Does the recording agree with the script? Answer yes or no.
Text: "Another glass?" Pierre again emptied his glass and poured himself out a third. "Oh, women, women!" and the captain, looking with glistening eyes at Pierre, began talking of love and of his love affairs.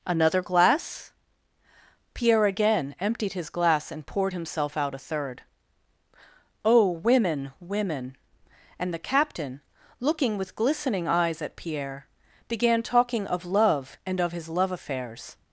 yes